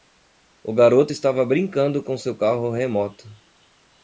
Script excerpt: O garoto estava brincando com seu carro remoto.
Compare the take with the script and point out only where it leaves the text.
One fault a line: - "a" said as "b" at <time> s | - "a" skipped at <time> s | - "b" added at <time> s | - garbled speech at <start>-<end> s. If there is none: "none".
none